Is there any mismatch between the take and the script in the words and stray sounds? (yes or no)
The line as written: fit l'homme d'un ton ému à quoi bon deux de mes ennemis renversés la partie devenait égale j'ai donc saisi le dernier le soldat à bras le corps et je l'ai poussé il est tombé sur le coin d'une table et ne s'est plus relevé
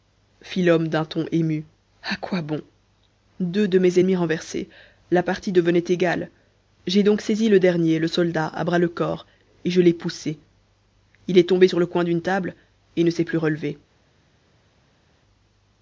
no